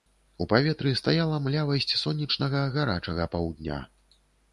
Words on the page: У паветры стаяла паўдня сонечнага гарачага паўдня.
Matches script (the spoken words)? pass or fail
fail